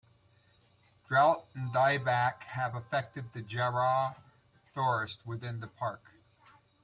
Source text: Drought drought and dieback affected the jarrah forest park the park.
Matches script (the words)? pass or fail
fail